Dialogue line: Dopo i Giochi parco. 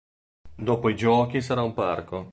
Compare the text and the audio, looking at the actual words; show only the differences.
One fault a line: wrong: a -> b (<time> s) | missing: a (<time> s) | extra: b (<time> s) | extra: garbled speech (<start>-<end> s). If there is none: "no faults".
extra: sarà un (1.4 s)